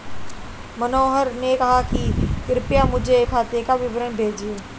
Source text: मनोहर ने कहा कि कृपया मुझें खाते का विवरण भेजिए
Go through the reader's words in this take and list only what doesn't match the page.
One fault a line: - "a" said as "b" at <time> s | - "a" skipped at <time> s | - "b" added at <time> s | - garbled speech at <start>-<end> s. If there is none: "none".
none